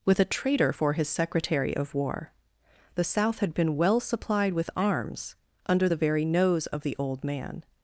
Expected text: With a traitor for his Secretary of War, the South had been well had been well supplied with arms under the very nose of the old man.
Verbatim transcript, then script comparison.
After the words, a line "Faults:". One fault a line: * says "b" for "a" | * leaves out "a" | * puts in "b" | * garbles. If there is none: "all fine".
With a traitor for his Secretary of War, the South had been well supplied with arms under the very nose of the old man.
Faults:
* leaves out "had been well"